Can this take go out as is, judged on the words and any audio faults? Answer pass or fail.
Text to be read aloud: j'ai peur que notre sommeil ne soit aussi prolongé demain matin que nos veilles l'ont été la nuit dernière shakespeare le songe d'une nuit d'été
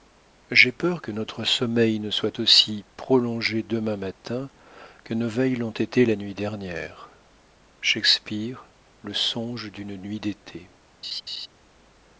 fail